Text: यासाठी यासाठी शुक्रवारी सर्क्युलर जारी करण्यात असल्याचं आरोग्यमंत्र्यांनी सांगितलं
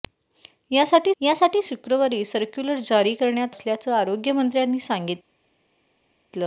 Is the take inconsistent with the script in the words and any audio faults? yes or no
no